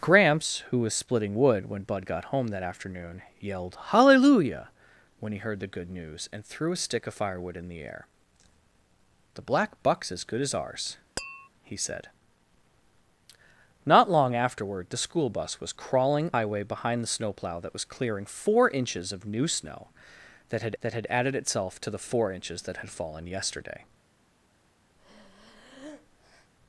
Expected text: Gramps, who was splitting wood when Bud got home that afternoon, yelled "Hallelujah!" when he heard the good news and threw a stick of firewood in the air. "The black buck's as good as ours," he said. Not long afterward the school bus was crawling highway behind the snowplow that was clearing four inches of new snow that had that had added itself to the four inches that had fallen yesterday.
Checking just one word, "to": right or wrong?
right